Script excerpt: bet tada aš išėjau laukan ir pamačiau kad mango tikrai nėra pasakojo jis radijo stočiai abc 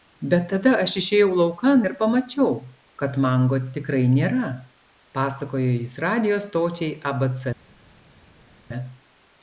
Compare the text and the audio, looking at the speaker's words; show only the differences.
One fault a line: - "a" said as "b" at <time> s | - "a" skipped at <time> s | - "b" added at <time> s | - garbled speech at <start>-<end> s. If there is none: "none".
none